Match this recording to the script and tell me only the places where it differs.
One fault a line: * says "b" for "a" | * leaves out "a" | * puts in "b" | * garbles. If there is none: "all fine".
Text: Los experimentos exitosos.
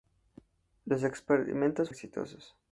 all fine